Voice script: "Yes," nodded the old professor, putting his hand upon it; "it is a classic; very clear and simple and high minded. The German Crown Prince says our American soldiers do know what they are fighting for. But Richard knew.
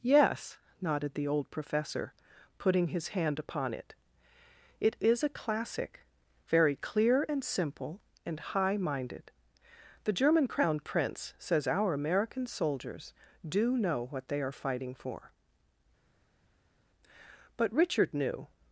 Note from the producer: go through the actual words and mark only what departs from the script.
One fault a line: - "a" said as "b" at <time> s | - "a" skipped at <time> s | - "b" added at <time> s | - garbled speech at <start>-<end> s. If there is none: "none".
none